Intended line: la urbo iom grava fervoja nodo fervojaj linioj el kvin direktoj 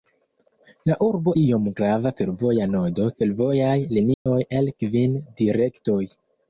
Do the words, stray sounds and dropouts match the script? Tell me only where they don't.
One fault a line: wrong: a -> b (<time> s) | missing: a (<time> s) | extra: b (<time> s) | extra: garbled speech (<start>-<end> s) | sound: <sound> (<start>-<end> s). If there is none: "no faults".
sound: dropout (4.1-4.3 s)